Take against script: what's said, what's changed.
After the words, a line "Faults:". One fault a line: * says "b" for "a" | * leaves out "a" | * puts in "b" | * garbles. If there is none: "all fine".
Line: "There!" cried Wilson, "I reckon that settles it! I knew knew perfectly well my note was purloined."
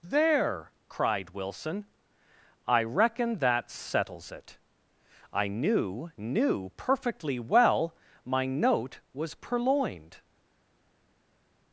"There!" cried Wilson, "I reckon that settles it! I knew knew perfectly well my note was purloined."
Faults:
all fine